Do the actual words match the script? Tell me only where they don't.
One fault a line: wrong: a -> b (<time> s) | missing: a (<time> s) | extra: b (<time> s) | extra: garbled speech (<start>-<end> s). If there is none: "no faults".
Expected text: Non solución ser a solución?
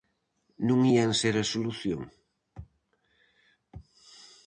wrong: solución -> ían (0.9 s)